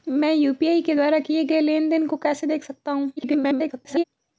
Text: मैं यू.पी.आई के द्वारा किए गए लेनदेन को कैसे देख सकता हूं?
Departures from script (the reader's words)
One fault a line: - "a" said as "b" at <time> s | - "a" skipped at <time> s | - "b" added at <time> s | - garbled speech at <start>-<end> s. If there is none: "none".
- garbled speech at 3.2-4.0 s